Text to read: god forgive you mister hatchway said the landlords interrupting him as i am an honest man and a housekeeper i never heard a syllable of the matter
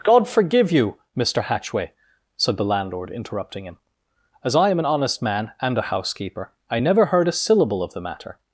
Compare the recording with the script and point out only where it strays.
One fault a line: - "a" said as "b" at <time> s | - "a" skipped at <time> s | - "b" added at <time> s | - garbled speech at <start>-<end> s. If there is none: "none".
- "landlords" said as "landlord" at 2.6 s